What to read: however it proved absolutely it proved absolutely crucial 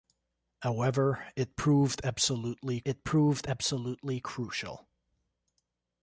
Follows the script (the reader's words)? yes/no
yes